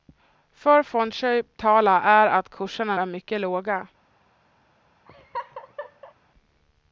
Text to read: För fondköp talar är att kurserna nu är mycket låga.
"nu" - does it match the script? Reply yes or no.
no